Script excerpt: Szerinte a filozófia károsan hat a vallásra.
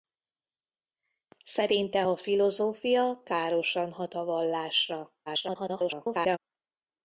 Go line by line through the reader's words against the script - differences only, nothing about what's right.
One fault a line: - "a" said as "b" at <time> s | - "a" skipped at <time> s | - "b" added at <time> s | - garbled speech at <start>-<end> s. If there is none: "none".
- garbled speech at 5.3-6.4 s